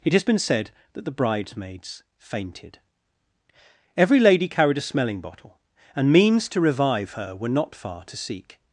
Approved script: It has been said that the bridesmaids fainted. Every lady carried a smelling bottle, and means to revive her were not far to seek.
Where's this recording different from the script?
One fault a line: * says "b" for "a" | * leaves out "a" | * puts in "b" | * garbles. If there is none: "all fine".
all fine